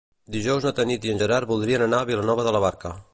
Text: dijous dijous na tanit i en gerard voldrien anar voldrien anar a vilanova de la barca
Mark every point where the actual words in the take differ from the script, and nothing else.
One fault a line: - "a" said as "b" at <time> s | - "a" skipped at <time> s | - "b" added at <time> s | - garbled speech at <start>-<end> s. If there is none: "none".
- "dijous" skipped at 0.7 s
- "voldrien anar" skipped at 2.0 s